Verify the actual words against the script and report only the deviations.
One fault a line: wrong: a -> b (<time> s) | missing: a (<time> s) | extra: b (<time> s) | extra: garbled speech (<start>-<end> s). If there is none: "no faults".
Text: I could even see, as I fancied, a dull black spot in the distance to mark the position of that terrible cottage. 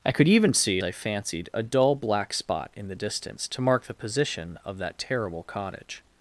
missing: as (0.8 s)